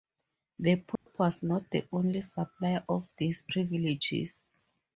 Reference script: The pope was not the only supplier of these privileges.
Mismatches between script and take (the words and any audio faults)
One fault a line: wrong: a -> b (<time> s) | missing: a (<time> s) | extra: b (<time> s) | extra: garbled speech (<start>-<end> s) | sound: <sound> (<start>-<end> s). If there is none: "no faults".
sound: dropout (1.0-1.1 s)